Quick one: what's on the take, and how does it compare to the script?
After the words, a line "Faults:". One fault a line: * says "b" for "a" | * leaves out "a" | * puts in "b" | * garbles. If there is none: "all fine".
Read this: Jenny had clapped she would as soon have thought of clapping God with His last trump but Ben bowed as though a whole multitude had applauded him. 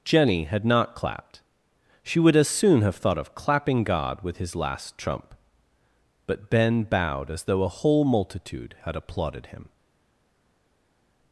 Jenny had not clapped she would as soon have thought of clapping God with His last trump but Ben bowed as though a whole multitude had applauded him.
Faults:
* puts in "not"